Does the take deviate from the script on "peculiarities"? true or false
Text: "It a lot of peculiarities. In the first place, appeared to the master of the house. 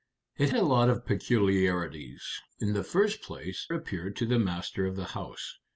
false